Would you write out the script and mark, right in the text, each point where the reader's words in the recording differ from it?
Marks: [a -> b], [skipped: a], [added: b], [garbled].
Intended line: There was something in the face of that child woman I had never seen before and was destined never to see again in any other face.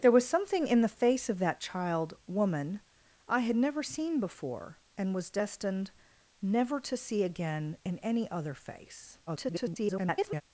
There was something in the face of that child woman I had never seen before and was destined never to see again in any other face. [garbled]